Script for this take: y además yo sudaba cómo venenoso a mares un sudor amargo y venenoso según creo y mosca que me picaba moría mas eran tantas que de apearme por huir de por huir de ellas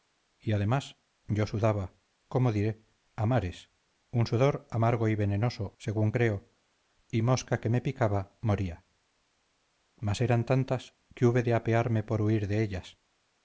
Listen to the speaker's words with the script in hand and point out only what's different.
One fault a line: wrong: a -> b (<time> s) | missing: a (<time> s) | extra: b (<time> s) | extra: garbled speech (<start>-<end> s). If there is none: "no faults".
wrong: venenoso -> diré (2.5 s)
extra: hube (11.3 s)
missing: por huir de (12.6 s)